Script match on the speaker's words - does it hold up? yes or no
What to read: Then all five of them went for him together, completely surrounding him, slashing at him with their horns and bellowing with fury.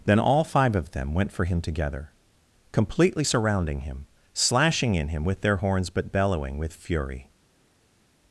no